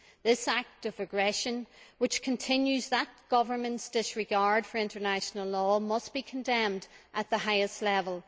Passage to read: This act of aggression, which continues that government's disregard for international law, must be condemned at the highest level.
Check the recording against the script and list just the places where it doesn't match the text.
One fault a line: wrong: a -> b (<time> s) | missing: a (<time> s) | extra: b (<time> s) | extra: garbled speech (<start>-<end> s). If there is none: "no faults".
no faults